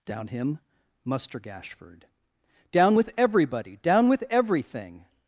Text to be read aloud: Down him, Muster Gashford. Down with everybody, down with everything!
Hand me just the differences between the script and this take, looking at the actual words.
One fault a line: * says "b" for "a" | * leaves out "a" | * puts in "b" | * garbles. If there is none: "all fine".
all fine